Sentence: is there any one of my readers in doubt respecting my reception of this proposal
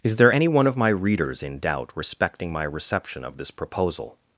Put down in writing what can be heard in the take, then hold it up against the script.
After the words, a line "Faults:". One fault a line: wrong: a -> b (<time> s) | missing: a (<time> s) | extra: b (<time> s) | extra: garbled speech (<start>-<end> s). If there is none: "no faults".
is there any one of my readers in doubt respecting my reception of this proposal
Faults:
no faults